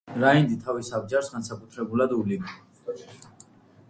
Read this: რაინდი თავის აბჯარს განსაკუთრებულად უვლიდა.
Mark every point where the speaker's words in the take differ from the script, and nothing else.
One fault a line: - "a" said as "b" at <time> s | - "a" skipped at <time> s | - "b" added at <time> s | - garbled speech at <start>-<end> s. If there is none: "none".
none